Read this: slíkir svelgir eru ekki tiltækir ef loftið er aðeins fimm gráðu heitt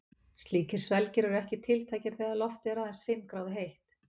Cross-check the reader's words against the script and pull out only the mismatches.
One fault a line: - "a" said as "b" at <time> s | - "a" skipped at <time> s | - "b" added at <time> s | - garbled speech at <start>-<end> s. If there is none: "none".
- "ef" said as "þegar" at 2.2 s